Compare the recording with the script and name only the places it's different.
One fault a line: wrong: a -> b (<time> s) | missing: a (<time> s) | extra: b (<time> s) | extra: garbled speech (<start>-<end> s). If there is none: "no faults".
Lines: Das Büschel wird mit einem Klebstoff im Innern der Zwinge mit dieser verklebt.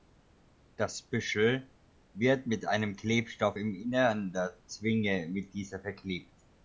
no faults